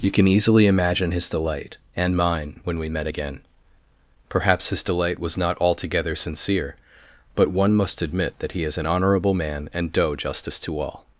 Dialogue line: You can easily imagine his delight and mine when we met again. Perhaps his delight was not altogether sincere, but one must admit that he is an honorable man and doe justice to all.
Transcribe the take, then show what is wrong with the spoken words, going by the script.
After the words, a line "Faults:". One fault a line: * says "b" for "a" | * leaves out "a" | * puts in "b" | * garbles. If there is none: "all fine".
You can easily imagine his delight and mine when we met again. Perhaps his delight was not altogether sincere, but one must admit that he is an honorable man and doe justice to all.
Faults:
all fine